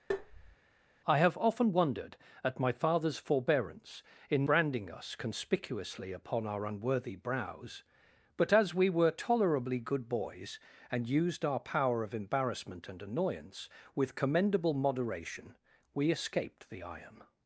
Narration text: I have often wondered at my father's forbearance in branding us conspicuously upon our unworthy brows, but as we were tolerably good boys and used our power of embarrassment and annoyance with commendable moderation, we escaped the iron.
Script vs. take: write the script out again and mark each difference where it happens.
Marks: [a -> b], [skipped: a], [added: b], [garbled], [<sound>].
[tap] I have often wondered at my father's forbearance in branding us conspicuously upon our unworthy brows, but as we were tolerably good boys and used our power of embarrassment and annoyance with commendable moderation, we escaped the iron.